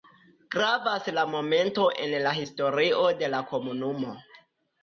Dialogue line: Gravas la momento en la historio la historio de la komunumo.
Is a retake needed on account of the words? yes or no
yes